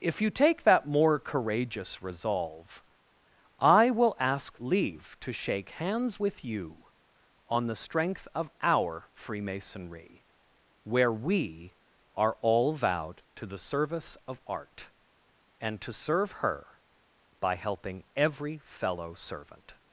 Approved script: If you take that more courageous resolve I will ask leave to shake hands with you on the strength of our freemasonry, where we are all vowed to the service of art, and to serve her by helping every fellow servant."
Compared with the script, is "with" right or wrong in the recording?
right